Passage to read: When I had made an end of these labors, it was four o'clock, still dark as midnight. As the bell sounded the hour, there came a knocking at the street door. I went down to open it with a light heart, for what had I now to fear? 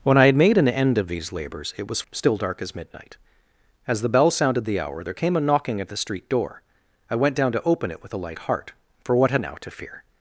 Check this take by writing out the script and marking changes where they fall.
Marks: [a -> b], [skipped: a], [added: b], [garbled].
When I had made an end of these labors, it was [skipped: four o'clock,] still dark as midnight. As the bell sounded the hour, there came a knocking at the street door. I went down to open it with a light heart, for what had [skipped: I] now to fear?